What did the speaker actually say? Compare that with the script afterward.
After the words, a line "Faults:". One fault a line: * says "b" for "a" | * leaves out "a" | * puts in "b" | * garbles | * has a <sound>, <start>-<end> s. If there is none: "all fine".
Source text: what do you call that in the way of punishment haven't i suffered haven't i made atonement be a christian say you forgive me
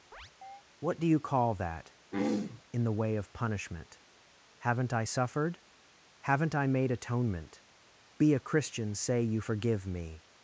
what do you call that in the way of punishment haven't i suffered haven't i made atonement be a christian say you forgive me
Faults:
* has a chirp, 0.1-0.6 s
* has a throat clearing, 2.1-2.6 s